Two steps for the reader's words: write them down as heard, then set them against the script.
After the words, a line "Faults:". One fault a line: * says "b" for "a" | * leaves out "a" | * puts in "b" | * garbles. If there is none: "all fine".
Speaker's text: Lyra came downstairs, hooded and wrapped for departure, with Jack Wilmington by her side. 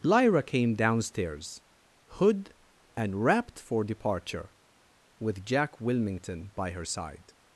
Lyra came downstairs, hood and wrapped for departure, with Jack Wilmington by her side.
Faults:
* says "hood" for "hooded"